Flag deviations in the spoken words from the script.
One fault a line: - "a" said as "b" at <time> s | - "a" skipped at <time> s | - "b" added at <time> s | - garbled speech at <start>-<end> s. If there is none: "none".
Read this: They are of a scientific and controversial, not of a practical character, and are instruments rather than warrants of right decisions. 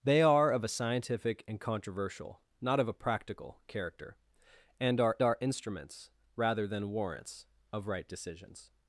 - "are" added at 5.2 s